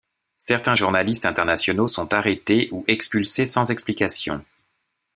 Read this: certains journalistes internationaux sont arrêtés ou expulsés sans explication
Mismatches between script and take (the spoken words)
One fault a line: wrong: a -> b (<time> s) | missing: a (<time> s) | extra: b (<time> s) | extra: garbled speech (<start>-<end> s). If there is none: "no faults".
no faults